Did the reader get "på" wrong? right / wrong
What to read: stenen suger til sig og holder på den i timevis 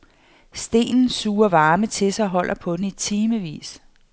right